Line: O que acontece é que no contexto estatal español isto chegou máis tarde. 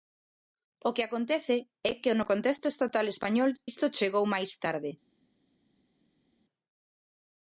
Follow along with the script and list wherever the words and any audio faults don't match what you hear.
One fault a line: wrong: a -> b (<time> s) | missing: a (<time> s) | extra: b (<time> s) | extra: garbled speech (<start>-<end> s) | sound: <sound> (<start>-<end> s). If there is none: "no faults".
no faults